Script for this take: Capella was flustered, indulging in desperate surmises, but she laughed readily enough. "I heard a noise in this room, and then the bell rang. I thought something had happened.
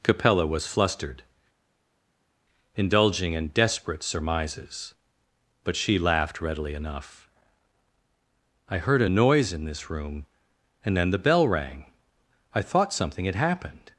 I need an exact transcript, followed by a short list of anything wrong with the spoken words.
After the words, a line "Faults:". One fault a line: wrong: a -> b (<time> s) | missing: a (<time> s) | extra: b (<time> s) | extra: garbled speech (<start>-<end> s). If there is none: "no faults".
Capella was flustered, indulging in desperate surmises, but she laughed readily enough. "I heard a noise in this room, and then the bell rang. I thought something had happened.
Faults:
no faults